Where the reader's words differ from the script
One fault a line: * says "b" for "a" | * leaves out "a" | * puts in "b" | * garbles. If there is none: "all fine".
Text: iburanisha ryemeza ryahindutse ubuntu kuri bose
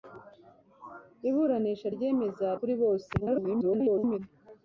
* leaves out "ryahindutse ubuntu"
* garbles